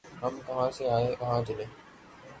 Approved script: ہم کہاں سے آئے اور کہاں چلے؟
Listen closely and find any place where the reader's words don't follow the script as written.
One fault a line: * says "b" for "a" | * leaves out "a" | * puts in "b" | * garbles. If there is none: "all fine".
* leaves out "اور"